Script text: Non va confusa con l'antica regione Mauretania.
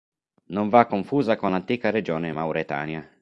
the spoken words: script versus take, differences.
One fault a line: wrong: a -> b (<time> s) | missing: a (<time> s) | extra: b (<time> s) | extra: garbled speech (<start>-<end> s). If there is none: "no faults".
no faults